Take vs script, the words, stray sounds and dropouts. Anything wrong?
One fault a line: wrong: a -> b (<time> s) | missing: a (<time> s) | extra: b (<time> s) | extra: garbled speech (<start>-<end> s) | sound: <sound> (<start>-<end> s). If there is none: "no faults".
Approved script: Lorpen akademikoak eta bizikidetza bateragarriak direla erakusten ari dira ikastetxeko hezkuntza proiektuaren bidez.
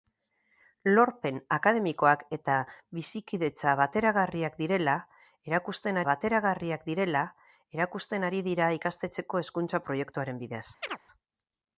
extra: bateragarriak direla erakusten (6.1 s)
sound: chirp (10.8-11.0 s)